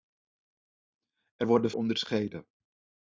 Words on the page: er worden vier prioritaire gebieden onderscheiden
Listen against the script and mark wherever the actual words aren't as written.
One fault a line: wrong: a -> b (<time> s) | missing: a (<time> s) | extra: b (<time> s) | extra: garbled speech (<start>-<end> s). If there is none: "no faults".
missing: vier prioritaire gebieden (1.7 s)